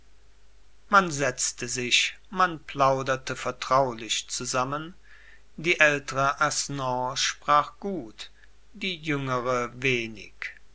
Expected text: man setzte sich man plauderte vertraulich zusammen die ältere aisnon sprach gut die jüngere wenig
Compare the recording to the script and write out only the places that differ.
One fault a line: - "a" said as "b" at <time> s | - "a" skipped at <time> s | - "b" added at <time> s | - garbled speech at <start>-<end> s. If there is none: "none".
none